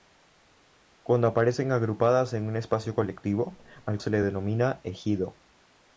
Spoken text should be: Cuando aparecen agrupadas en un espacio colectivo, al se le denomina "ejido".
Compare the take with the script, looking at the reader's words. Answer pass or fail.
pass